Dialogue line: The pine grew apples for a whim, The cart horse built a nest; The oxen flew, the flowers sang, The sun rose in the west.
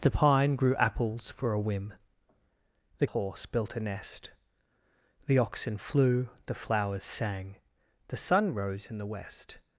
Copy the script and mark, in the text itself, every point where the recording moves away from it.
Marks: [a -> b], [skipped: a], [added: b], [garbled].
The pine grew apples for a whim, The [skipped: cart] horse built a nest; The oxen flew, the flowers sang, The sun rose in the west.